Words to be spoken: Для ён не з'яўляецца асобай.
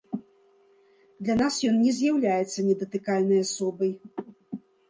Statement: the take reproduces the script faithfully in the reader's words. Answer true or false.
false